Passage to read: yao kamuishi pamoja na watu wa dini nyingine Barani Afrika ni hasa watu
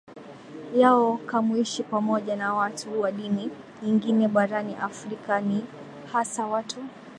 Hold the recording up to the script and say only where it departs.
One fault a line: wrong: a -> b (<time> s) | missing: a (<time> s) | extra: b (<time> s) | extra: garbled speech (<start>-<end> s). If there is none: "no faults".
no faults